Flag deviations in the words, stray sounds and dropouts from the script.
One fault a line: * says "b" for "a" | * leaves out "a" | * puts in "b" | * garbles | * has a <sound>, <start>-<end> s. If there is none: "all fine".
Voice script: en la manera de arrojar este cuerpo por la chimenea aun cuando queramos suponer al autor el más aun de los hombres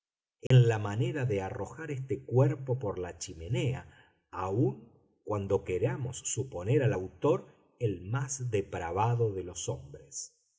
* has a dropout, 0.5-0.5 s
* says "depravado" for "aun"